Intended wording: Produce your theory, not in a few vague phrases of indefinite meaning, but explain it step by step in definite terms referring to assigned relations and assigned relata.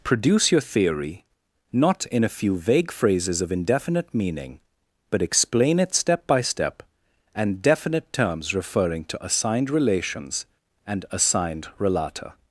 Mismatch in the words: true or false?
true